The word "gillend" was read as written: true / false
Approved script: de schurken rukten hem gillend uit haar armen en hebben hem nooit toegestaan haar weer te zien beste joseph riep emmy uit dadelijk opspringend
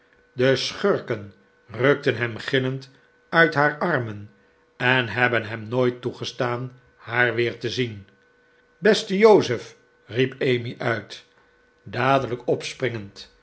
true